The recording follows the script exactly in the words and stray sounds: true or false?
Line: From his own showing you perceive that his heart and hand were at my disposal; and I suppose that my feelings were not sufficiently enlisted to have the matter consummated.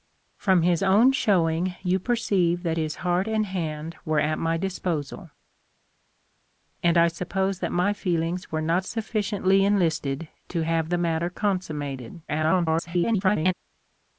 false